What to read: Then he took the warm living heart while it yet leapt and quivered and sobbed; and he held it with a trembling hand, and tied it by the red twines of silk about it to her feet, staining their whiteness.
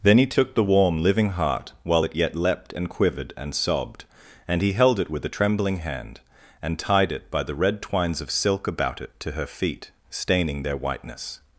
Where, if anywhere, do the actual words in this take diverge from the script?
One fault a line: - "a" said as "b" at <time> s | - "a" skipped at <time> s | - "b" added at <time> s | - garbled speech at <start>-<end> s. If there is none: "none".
none